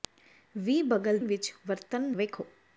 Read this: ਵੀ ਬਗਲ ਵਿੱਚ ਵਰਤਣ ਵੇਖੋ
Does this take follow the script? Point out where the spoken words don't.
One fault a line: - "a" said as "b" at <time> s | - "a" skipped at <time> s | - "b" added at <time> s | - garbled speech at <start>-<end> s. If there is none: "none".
none